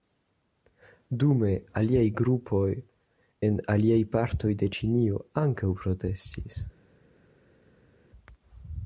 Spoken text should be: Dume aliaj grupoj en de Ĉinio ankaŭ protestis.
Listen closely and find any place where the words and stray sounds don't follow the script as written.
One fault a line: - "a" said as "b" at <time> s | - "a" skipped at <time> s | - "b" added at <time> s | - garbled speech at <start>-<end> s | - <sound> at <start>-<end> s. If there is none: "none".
- "aliaj partoj" added at 3.8 s